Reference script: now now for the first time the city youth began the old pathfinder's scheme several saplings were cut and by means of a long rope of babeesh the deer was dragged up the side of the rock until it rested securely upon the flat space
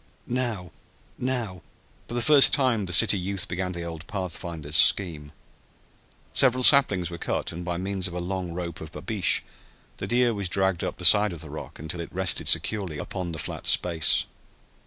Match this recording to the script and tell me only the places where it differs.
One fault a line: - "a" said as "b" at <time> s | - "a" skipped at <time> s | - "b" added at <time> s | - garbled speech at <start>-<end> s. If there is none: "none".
none